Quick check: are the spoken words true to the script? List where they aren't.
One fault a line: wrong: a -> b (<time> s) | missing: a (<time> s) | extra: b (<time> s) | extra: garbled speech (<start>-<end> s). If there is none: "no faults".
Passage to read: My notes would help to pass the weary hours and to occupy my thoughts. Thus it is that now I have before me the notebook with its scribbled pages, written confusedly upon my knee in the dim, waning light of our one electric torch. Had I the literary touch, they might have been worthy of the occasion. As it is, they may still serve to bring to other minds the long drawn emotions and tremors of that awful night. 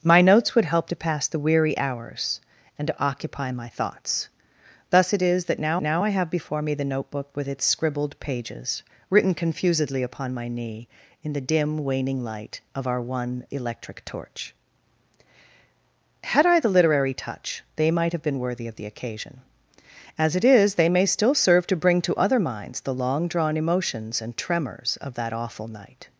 extra: now (5.8 s)